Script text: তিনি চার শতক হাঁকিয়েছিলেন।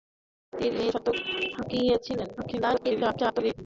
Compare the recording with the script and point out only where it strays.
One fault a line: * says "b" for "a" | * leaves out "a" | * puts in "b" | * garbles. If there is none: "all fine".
* leaves out "চার"
* garbles